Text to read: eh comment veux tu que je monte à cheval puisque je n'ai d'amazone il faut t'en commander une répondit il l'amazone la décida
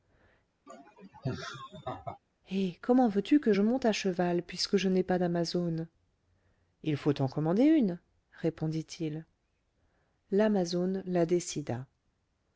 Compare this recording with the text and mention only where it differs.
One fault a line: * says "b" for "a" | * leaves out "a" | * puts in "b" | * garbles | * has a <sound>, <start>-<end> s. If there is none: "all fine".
* has a laugh, 0.7-2.2 s
* puts in "pas"